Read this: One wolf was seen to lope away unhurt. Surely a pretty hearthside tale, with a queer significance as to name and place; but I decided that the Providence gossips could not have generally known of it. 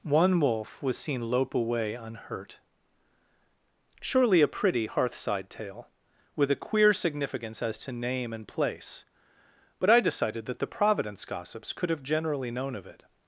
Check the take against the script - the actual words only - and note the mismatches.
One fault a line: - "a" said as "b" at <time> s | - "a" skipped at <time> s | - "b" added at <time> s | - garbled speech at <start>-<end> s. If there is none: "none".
- "to" skipped at 1.2 s
- "not" skipped at 11.9 s